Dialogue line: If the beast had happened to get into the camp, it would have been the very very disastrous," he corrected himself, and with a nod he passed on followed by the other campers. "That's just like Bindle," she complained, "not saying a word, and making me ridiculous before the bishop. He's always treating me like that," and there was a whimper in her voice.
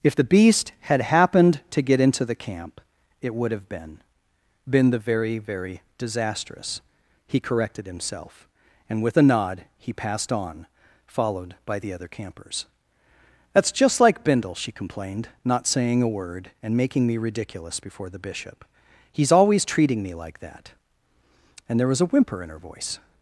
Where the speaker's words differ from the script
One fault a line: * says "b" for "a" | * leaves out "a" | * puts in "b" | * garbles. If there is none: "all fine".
* puts in "been"